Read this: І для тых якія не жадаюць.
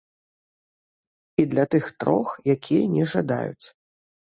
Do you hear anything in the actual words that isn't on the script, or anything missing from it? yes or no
yes